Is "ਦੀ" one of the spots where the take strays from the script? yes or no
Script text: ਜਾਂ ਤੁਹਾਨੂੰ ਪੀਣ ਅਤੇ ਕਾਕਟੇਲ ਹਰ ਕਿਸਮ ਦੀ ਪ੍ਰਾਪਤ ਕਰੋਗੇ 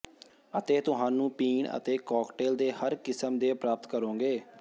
yes